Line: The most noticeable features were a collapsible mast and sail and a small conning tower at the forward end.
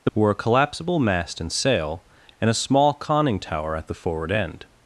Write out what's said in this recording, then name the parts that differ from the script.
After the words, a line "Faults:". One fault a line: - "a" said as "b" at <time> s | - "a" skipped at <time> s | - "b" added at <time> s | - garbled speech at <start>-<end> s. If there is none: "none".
The were a collapsible mast and sail and a small conning tower at the forward end.
Faults:
- "most noticeable features" skipped at 0.1 s